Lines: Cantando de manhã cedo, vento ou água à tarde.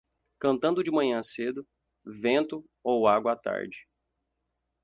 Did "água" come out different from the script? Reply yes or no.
no